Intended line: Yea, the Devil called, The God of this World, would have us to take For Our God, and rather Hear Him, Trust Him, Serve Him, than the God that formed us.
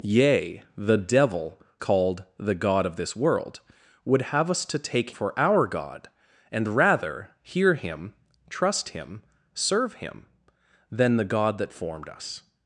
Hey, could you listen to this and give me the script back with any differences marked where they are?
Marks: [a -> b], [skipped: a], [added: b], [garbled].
Yea, the Devil called, The God of this World, would have us to take For Our God, and rather Hear Him, Trust Him, Serve Him, than the God that formed us.